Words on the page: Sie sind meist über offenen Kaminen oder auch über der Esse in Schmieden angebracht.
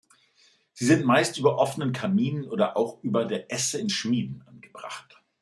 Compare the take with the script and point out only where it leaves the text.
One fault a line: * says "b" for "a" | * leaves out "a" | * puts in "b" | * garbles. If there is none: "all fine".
all fine